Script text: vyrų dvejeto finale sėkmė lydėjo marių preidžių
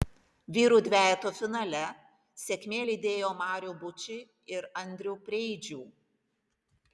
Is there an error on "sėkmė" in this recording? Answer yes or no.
no